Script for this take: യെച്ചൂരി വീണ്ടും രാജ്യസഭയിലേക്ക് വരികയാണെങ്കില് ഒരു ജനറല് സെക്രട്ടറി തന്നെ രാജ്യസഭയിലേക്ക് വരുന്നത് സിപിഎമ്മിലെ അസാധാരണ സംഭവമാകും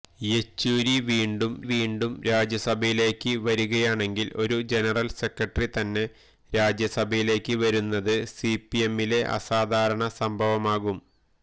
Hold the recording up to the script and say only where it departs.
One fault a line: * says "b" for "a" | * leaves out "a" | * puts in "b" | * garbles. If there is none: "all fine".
* puts in "വീണ്ടും"